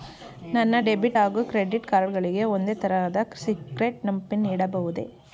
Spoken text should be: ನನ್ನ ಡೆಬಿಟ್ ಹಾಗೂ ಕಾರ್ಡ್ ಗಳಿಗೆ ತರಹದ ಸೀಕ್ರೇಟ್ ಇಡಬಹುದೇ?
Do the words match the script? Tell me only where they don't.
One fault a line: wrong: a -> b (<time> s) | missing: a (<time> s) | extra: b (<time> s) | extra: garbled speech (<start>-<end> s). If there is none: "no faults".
extra: ಕ್ರೆಡಿಟ್ (1.4 s)
extra: ಒಂದೇ (2.5 s)
extra: ಪಿನ್ (4.3 s)